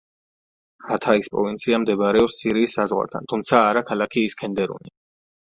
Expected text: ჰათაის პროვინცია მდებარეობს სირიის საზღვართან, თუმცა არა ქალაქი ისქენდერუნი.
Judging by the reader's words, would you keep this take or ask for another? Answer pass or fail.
pass